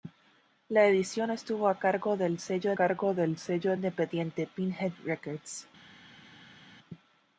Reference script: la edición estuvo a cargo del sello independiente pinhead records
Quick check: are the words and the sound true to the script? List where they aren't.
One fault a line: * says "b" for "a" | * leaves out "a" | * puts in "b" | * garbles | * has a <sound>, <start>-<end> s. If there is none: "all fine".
* puts in "cargo del sello"